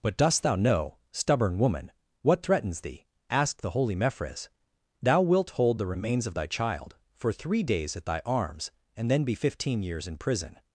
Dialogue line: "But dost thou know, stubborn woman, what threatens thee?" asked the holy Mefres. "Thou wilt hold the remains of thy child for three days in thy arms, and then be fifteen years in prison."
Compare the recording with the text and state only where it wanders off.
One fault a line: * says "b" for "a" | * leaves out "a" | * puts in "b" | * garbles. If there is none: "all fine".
* says "at" for "in"